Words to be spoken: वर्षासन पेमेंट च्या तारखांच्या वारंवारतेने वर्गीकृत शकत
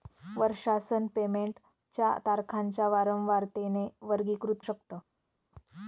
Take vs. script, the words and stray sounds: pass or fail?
pass